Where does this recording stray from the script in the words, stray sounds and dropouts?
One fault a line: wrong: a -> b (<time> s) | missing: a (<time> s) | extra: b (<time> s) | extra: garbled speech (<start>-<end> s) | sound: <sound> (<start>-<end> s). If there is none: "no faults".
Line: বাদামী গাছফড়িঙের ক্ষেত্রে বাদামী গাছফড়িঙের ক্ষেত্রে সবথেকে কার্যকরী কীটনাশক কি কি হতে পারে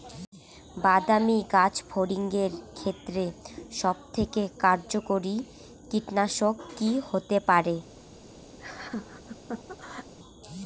missing: বাদামী গাছফড়িঙের ক্ষেত্রে (3.2 s)
missing: কি (6.9 s)
sound: laugh (8.6-10.1 s)